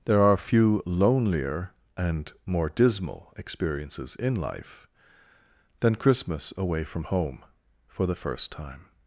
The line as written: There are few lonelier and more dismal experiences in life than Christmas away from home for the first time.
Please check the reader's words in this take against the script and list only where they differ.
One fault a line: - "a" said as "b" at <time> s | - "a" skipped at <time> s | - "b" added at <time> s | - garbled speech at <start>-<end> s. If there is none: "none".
none